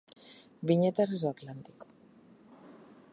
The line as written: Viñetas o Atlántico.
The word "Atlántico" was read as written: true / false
true